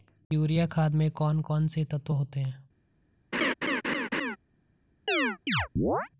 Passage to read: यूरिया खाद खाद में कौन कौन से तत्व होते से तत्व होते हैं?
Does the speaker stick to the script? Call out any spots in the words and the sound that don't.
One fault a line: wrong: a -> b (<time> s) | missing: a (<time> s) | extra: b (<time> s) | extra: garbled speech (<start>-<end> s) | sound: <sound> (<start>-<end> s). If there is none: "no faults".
missing: खाद (0.9 s)
missing: से तत्व होते (2.4 s)
sound: laugh (3.3-4.4 s)
sound: chirp (5.1-6.1 s)